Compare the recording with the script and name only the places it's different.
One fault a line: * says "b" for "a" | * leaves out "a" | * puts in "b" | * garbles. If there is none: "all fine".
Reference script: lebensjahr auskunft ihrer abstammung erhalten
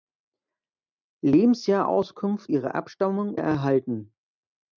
all fine